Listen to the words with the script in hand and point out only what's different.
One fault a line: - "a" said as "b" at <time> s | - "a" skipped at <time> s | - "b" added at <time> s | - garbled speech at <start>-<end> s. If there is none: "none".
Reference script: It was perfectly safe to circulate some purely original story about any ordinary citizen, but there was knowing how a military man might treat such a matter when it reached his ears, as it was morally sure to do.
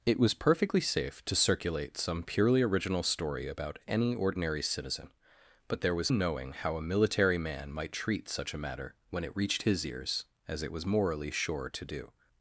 none